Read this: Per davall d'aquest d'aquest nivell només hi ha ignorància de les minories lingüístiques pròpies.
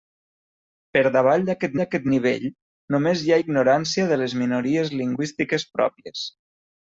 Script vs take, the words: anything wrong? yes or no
no